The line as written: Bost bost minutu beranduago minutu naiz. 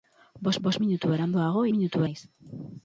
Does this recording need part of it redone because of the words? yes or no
no